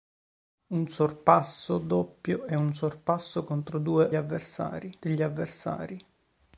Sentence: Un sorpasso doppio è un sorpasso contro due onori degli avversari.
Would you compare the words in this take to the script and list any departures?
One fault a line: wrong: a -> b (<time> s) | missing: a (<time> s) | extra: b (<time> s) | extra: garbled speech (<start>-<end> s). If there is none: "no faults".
wrong: onori -> avversari (4.1 s)